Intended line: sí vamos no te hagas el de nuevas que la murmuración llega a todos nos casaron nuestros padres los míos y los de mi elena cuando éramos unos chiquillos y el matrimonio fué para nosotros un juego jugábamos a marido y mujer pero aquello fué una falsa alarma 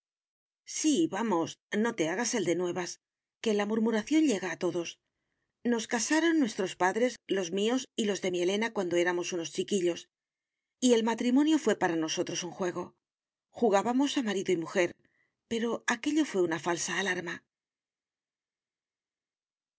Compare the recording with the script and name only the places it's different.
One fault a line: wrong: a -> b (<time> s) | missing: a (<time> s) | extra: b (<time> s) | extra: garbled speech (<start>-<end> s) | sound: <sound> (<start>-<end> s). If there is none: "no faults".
no faults